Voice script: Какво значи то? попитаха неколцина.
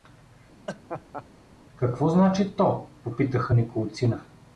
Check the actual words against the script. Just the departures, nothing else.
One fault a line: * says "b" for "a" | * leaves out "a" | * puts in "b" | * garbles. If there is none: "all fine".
all fine